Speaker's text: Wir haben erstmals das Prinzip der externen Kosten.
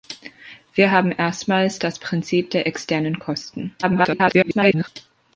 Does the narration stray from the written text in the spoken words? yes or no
yes